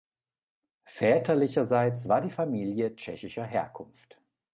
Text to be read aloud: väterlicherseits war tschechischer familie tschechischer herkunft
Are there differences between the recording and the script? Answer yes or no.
yes